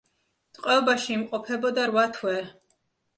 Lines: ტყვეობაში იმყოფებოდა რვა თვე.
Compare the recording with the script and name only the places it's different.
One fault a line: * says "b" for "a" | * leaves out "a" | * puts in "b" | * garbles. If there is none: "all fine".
all fine